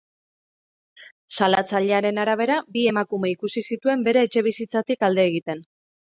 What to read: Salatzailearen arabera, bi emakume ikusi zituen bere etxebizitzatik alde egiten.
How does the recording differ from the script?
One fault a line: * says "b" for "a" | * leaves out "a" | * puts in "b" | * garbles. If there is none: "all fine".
all fine